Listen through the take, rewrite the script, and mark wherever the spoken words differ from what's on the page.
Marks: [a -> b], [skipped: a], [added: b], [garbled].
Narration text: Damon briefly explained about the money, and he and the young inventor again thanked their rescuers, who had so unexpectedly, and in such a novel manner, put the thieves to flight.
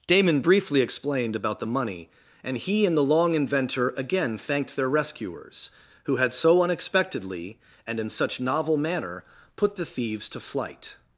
Damon briefly explained about the money, and he and the [young -> long] inventor again thanked their rescuers, who had so unexpectedly, and in such [skipped: a] novel manner, put the thieves to flight.